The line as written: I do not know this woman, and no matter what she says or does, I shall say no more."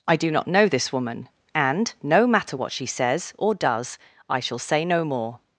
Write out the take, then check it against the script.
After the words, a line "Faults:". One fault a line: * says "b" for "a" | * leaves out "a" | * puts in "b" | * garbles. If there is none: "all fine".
I do not know this woman, and no matter what she says or does, I shall say no more."
Faults:
all fine